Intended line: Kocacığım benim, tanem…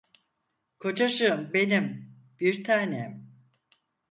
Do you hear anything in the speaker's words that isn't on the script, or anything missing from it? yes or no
yes